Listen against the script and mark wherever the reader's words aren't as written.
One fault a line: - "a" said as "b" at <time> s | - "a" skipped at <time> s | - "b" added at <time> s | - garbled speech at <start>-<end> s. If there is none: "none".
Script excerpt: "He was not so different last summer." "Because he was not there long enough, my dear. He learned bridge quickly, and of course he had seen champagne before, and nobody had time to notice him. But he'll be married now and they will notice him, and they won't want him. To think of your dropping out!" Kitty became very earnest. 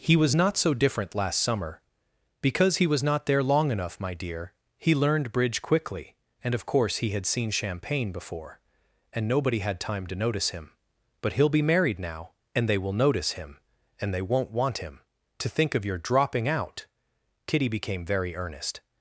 none